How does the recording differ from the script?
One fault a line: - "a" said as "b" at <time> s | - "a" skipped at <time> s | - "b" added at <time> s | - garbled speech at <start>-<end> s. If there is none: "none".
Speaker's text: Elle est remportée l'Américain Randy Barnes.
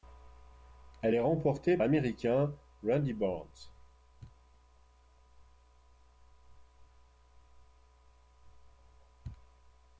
none